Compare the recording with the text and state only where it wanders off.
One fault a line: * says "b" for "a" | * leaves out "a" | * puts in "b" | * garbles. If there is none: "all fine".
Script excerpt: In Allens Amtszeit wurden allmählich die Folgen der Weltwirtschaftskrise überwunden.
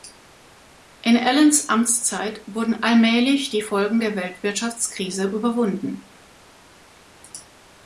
all fine